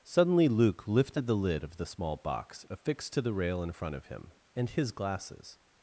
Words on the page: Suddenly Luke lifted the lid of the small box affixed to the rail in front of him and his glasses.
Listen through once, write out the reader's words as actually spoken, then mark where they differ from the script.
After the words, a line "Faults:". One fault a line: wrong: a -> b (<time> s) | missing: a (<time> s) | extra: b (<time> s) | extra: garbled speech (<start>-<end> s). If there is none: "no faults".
Suddenly Luke lifted the lid of the small box affixed to the rail in front of him and his glasses.
Faults:
no faults